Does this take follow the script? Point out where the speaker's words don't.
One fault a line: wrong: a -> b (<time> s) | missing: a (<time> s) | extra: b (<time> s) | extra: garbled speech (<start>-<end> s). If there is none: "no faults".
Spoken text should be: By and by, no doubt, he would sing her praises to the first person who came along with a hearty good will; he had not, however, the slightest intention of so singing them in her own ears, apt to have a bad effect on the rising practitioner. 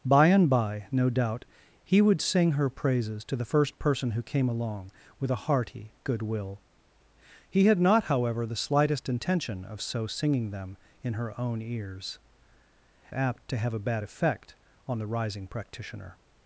no faults